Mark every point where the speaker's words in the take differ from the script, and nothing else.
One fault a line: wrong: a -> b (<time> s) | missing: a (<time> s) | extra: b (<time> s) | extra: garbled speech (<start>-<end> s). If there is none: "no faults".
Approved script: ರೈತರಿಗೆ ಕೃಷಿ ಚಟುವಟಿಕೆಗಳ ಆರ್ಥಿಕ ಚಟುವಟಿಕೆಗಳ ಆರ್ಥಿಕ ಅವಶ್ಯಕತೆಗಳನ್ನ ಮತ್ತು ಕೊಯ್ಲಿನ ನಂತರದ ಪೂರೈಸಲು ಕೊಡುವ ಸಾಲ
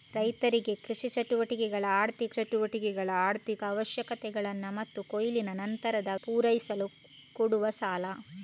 no faults